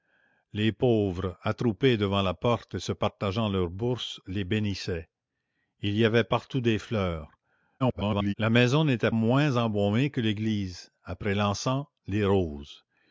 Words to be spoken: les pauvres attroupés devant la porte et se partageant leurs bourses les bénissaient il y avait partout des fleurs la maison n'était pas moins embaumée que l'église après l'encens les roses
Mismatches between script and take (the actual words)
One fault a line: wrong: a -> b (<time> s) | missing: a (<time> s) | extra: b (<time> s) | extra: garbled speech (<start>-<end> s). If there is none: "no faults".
extra: garbled speech (7.8-8.3 s)
missing: pas (9.1 s)